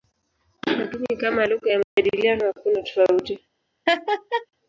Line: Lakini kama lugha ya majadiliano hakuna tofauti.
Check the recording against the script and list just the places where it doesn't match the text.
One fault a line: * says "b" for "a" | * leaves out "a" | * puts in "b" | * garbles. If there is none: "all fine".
all fine